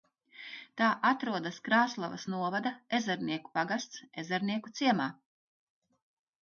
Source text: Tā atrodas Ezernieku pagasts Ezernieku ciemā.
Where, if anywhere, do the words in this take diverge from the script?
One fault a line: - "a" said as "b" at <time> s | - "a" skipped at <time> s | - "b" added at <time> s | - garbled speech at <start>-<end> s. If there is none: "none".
- "Krāslavas novada" added at 1.7 s